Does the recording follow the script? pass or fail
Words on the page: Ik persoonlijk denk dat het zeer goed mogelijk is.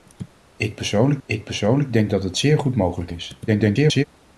fail